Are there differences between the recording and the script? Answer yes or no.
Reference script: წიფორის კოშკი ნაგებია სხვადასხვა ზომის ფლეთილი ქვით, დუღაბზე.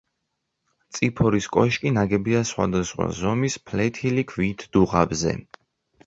no